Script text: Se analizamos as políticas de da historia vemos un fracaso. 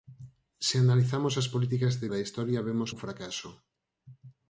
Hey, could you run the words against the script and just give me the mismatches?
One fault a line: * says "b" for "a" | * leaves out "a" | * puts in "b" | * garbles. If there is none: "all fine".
all fine